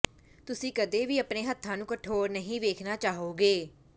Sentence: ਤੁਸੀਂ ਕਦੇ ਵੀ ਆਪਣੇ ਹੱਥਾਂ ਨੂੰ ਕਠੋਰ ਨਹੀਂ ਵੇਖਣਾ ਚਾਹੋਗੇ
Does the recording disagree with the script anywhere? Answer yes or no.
no